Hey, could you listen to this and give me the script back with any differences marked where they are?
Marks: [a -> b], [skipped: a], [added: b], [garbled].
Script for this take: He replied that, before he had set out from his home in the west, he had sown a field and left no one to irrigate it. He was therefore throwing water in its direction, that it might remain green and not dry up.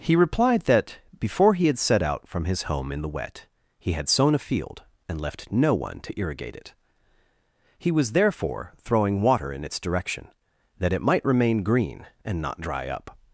He replied that, before he had set out from his home in the [west, -> wet] he had sown a field and left no one to irrigate it. He was therefore throwing water in its direction, that it might remain green and not dry up.